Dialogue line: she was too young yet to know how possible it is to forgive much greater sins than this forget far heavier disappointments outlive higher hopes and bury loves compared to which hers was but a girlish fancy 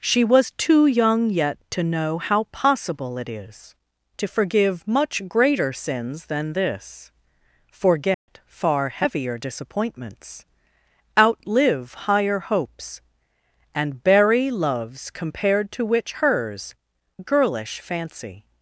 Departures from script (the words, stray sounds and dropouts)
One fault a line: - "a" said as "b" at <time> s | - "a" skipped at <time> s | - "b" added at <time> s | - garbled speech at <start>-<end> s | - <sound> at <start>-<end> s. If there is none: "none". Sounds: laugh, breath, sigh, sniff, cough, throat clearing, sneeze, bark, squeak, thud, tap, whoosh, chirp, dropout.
- dropout at 8.1-8.3 s
- "was but a" skipped at 16.8 s